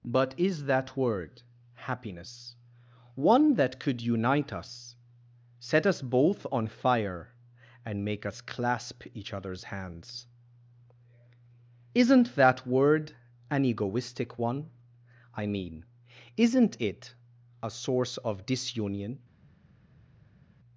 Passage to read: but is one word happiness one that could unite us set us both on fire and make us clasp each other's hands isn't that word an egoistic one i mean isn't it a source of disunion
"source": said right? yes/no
yes